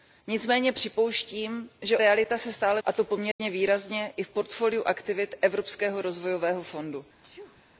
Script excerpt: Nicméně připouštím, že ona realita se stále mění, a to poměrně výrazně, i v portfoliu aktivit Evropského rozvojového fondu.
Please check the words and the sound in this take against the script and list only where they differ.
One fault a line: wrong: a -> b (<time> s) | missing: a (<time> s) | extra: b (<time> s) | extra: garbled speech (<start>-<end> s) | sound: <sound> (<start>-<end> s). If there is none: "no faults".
missing: ona (2.0 s)
missing: mění (2.8 s)
sound: dropout (3.3-3.4 s)
sound: sneeze (7.2-7.7 s)